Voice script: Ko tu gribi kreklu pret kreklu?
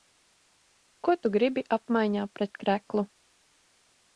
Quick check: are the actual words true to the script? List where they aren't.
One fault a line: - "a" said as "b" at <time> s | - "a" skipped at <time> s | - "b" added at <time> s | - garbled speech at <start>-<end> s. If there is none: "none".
- "kreklu" said as "apmaiņā" at 1.8 s